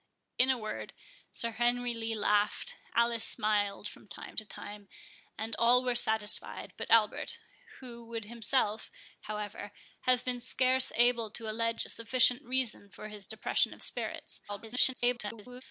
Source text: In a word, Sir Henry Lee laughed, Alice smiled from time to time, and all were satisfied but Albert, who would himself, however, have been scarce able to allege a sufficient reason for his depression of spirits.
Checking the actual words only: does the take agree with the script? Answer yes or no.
no